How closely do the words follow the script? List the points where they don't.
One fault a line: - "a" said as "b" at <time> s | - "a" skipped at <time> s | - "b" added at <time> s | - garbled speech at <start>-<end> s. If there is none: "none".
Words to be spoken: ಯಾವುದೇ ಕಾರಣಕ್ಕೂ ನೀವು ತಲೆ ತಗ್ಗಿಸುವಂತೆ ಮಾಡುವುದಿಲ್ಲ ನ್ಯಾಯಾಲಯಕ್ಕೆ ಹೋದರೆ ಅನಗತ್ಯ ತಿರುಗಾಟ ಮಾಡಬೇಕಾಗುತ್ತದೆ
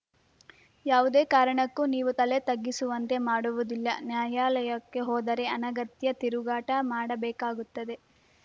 none